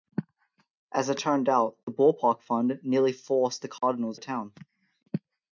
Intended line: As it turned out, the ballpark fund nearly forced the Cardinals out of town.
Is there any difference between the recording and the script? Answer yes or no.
yes